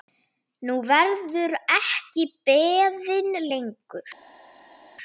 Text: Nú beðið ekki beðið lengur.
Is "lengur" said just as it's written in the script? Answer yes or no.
yes